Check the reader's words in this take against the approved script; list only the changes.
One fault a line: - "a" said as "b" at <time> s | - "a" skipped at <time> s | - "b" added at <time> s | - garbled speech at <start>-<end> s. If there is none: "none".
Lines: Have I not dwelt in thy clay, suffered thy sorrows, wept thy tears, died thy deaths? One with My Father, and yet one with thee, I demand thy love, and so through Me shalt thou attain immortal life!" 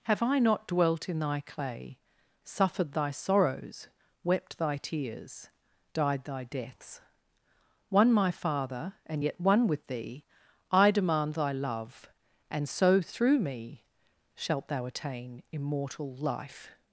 - "with" skipped at 8.1 s